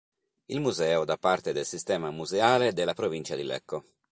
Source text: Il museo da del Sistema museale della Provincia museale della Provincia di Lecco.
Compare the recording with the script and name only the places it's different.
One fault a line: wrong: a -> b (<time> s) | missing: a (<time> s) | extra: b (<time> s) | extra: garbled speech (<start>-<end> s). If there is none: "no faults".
extra: parte (1.1 s)
missing: museale della Provincia (3.4 s)